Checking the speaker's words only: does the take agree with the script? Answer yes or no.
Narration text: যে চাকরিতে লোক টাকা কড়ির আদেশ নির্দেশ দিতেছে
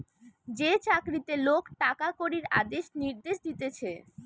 yes